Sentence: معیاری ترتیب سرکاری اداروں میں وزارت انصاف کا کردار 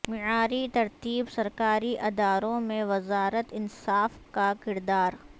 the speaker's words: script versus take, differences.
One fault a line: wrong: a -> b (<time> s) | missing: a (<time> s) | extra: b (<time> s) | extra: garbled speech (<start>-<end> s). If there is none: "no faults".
no faults